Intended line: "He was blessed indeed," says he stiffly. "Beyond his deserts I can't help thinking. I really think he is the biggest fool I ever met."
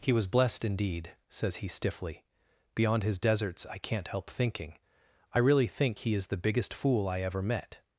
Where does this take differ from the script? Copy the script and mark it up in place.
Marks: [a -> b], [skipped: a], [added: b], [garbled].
"He was blessed indeed," says he stiffly. "Beyond his deserts I can't help thinking. I really think he is the biggest fool I ever met."